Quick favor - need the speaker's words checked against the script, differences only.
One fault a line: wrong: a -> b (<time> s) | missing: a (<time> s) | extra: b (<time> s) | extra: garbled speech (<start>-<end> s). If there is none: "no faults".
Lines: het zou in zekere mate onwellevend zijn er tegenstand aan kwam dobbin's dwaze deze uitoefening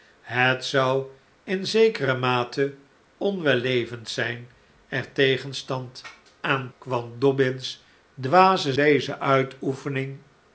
no faults